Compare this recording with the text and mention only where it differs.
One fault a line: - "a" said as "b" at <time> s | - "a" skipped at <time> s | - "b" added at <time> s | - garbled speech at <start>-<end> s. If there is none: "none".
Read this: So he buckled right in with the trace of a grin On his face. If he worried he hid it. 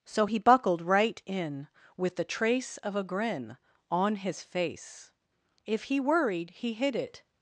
none